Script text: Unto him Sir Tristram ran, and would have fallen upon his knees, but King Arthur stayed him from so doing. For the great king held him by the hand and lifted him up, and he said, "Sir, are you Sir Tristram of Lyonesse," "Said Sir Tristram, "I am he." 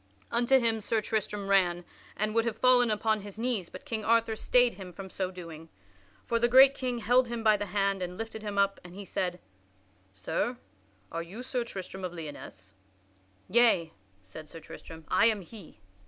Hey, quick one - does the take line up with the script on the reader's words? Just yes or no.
no